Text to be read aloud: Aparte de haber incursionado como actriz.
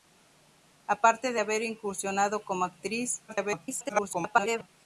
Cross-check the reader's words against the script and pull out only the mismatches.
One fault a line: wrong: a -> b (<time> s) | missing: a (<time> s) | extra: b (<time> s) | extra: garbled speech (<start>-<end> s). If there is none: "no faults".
extra: garbled speech (3.3-4.7 s)